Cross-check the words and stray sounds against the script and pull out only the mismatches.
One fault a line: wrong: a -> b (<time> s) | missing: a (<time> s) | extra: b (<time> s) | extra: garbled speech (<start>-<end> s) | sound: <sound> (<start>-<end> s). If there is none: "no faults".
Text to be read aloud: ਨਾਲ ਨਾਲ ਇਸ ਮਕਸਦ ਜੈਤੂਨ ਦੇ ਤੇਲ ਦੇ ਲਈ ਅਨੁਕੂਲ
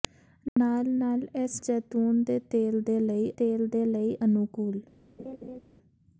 sound: dropout (0.5-0.6 s)
missing: ਮਕਸਦ (1.6 s)
extra: ਤੇਲ ਦੇ ਲਈ (3.4 s)
sound: laugh (5.2-5.6 s)